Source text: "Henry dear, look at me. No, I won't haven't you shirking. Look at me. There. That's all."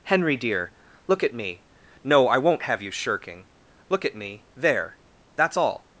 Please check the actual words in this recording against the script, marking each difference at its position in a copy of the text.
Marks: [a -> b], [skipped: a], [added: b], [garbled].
"Henry dear, look at me. No, I won't [haven't -> have] you shirking. Look at me. There. That's all."